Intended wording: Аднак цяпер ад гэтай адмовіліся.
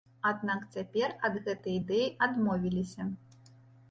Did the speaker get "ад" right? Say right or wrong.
right